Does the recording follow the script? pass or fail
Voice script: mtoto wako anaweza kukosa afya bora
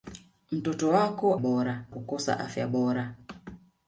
fail